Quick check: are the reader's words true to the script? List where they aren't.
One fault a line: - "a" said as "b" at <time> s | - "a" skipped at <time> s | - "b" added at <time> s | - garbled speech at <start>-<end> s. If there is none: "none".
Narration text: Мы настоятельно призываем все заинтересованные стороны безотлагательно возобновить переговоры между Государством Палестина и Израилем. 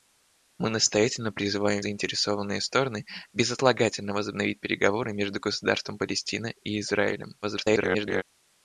- "все" skipped at 1.8 s
- garbled speech at 7.4-8.2 s